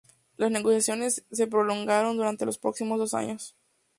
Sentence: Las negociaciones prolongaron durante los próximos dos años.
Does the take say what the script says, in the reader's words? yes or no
no